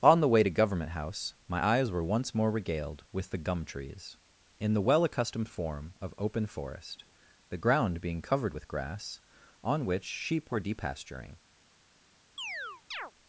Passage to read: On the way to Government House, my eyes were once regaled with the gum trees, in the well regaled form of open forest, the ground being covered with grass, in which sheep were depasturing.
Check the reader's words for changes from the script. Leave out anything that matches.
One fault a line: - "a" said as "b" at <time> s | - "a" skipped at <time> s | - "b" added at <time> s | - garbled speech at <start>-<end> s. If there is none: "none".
- "more" added at 2.3 s
- "regaled" said as "accustomed" at 5.0 s
- "in" said as "on" at 9.6 s